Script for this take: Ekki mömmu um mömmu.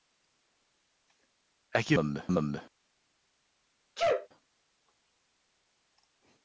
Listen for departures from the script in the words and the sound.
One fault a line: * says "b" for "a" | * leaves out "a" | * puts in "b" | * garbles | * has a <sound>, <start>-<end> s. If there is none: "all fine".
* has a sneeze, 4.0-4.3 s